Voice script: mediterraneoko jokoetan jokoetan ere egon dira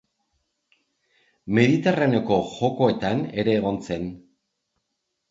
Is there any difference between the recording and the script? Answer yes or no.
yes